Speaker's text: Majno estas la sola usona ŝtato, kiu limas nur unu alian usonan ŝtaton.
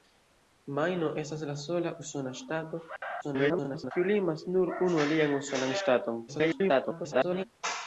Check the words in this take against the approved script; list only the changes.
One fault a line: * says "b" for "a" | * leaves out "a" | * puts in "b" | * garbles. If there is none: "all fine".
* garbles
* garbles